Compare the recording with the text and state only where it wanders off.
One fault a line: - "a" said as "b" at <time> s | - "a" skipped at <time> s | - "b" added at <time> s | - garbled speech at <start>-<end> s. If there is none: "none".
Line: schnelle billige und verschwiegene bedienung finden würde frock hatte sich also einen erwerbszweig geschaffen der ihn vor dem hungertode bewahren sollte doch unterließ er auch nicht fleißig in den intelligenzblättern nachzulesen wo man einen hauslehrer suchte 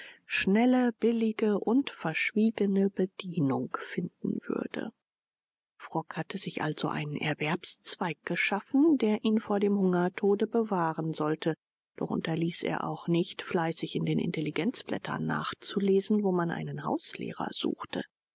none